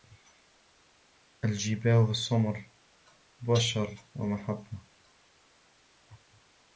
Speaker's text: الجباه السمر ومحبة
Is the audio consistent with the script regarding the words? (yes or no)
no